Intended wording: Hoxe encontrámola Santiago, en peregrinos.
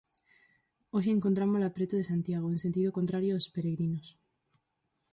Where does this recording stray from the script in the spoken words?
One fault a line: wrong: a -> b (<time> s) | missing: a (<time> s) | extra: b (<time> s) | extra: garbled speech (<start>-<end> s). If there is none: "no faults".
extra: preto de (1.8 s)
extra: sentido contrario aos (2.6 s)